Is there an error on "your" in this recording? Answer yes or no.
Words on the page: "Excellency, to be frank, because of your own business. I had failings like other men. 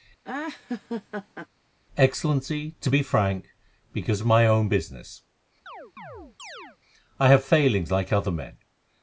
yes